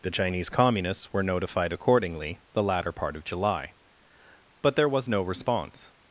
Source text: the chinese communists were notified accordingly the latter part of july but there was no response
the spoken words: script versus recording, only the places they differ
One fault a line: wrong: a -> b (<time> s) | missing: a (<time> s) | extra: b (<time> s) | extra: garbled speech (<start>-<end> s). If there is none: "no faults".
no faults